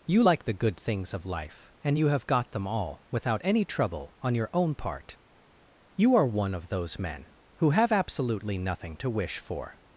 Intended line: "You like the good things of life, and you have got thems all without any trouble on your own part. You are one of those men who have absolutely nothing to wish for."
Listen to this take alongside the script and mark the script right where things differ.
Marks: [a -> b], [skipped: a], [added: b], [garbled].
"You like the good things of life, and you have got [thems -> them] all without any trouble on your own part. You are one of those men who have absolutely nothing to wish for."